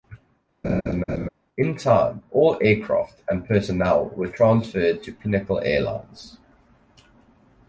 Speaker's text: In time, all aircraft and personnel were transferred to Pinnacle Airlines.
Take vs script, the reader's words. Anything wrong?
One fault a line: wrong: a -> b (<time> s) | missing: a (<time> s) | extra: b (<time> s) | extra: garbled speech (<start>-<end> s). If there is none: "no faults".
no faults